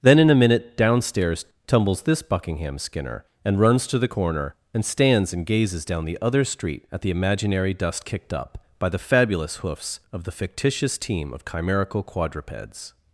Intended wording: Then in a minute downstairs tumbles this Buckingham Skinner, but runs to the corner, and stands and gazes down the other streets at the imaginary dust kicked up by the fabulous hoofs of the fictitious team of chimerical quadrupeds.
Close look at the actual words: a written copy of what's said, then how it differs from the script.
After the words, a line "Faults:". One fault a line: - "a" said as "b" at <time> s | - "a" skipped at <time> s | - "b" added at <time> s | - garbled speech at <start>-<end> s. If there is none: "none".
Then in a minute downstairs tumbles this Buckingham Skinner, and runs to the corner, and stands and gazes down the other street at the imaginary dust kicked up by the fabulous hoofs of the fictitious team of chimerical quadrupeds.
Faults:
- "but" said as "and" at 3.5 s
- "streets" said as "street" at 6.5 s